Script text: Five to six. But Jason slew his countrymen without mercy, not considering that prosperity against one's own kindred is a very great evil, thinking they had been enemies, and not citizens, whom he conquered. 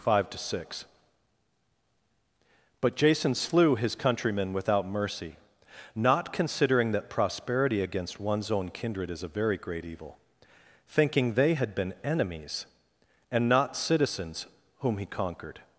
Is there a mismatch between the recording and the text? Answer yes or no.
no